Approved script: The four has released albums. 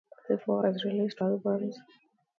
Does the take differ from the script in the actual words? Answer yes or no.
no